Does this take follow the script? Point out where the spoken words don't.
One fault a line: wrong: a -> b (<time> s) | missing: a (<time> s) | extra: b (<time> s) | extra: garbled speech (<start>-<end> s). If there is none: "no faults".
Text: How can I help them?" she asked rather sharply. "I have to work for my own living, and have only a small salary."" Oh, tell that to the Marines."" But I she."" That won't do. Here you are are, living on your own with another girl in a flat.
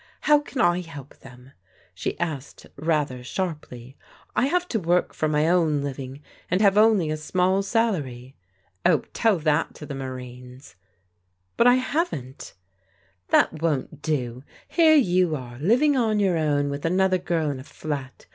wrong: she -> haven't (11.8 s)
missing: are (15.6 s)